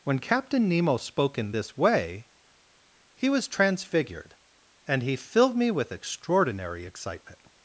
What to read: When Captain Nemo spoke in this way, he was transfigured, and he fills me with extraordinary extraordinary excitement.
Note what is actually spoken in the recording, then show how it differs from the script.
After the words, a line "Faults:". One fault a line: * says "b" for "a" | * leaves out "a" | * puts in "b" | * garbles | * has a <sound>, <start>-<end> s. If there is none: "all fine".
When Captain Nemo spoke in this way, he was transfigured, and he filled me with extraordinary excitement.
Faults:
* says "filled" for "fills"
* leaves out "extraordinary"